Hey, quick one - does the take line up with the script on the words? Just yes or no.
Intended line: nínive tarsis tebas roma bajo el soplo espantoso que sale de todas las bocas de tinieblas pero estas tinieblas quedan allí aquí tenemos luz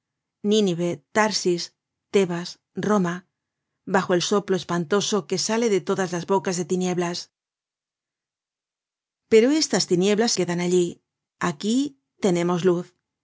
yes